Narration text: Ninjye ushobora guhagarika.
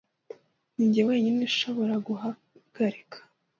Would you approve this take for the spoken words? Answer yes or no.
no